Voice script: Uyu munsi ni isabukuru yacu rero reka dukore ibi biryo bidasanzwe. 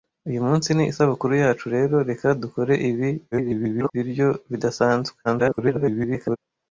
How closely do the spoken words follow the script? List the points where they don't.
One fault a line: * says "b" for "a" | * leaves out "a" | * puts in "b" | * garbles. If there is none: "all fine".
* garbles
* garbles